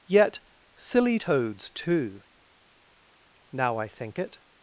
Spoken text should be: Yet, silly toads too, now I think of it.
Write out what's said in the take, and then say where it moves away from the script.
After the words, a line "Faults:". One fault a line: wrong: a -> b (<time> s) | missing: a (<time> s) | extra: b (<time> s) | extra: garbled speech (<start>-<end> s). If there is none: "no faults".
Yet, silly toads too, now I think it.
Faults:
missing: of (4.2 s)